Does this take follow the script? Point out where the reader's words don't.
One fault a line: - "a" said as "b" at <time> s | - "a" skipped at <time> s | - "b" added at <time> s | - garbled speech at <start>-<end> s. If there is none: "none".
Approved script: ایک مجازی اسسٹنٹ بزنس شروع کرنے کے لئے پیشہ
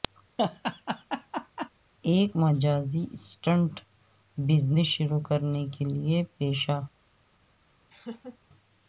none